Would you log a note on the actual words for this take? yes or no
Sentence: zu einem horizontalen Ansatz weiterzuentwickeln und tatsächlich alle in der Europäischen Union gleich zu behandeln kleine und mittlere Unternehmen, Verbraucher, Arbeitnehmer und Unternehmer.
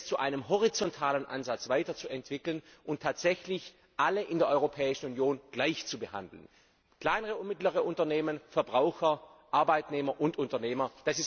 no